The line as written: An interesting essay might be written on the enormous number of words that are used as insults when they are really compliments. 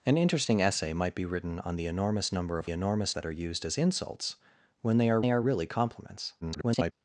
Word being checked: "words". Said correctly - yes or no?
no